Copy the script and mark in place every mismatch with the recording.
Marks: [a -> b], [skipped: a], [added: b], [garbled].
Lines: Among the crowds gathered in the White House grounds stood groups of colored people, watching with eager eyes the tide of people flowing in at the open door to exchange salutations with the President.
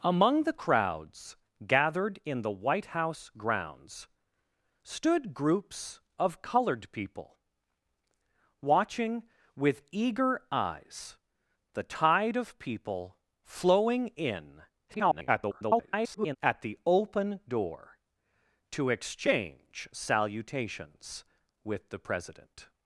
Among the crowds gathered in the White House grounds stood groups of colored people, watching with eager eyes the tide of people flowing in [garbled] at the open door to exchange salutations with the President.